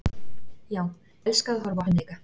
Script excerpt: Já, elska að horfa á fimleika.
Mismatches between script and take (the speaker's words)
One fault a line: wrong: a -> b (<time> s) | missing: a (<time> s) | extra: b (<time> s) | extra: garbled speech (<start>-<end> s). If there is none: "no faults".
no faults